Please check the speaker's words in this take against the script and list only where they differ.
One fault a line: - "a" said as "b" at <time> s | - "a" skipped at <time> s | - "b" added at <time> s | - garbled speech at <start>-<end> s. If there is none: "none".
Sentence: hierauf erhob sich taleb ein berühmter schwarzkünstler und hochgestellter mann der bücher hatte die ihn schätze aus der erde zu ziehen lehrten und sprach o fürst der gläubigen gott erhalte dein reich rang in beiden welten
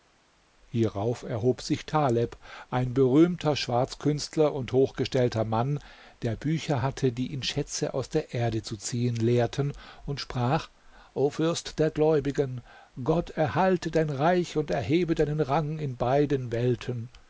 - "und erhebe deinen" added at 14.6 s